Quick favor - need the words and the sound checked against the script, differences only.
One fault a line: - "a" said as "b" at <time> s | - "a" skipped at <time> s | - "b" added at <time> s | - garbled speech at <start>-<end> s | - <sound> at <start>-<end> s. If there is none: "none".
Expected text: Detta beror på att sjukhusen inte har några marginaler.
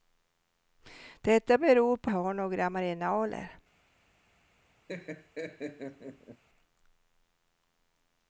- "att sjukhusen inte" skipped at 2.1 s
- laugh at 4.9-6.4 s